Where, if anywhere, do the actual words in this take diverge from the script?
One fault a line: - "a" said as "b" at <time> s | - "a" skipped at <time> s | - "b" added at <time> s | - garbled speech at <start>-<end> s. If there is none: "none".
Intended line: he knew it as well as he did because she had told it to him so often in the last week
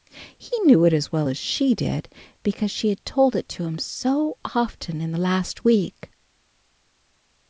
- "he" said as "she" at 1.4 s